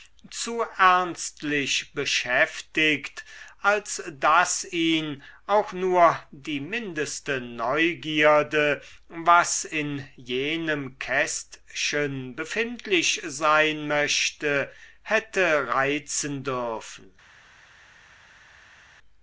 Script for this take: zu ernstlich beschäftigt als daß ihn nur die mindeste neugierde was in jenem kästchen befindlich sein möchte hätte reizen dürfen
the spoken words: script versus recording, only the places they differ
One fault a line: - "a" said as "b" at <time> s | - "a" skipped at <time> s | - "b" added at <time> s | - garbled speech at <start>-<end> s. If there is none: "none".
- "auch" added at 5.5 s